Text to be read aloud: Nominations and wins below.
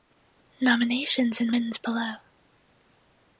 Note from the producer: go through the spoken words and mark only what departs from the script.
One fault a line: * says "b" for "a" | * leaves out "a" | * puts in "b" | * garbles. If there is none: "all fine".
all fine